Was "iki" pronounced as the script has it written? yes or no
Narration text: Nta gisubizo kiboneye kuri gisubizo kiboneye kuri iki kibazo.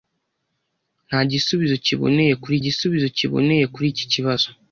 yes